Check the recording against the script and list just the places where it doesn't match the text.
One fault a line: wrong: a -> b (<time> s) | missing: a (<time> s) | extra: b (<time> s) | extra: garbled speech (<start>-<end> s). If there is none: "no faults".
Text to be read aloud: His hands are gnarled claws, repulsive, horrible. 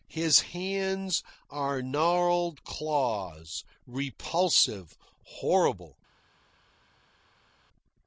no faults